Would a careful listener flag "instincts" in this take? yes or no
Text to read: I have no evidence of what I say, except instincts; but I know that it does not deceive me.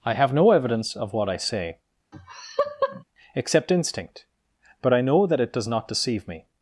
yes